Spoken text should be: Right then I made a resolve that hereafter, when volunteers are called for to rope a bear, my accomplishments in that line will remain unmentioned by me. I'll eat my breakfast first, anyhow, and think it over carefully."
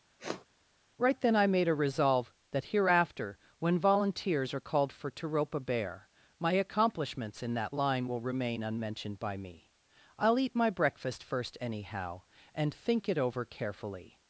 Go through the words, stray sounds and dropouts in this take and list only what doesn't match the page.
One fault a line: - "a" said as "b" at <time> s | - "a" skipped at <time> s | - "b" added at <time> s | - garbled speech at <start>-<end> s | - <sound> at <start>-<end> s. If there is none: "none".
- sniff at 0.2-0.5 s